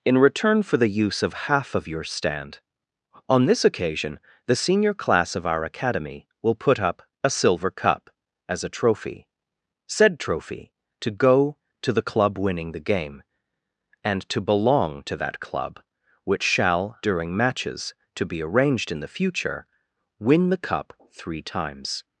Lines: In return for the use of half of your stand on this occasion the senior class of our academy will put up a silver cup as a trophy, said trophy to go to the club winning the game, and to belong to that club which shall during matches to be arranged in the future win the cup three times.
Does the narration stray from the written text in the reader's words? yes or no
no